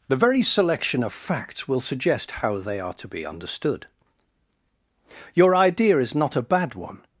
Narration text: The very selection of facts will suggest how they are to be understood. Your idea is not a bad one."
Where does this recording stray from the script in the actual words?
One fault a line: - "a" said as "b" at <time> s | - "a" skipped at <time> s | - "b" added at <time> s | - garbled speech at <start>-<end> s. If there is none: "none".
none